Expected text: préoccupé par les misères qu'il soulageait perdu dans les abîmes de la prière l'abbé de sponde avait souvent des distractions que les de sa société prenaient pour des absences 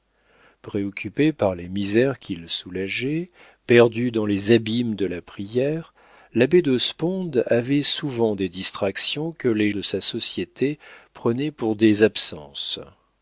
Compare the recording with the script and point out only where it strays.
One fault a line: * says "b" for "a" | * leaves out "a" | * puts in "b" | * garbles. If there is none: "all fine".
all fine